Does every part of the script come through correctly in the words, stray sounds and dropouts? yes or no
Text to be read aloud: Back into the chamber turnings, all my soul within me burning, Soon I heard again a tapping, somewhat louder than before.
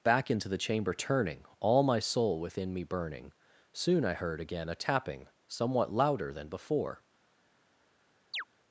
no